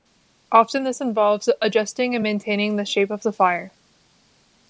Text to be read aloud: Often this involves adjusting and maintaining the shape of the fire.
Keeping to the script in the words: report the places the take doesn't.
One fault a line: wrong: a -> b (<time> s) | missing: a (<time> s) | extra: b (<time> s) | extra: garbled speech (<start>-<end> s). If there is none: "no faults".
no faults